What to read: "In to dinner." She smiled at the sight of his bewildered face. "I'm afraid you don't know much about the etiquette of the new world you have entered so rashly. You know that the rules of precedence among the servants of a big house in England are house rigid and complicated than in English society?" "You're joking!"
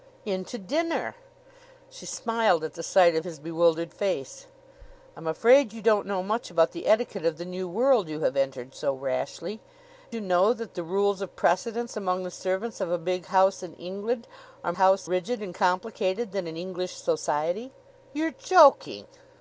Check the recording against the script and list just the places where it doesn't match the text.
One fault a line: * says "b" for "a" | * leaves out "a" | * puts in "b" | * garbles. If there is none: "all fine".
all fine